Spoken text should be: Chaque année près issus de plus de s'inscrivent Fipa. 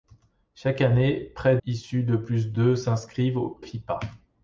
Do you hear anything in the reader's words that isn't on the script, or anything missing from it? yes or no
no